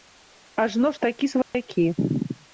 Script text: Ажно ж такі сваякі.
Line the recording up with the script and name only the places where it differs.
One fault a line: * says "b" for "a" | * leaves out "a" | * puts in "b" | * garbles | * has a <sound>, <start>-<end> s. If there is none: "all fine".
* has a dropout, 1.4-1.5 s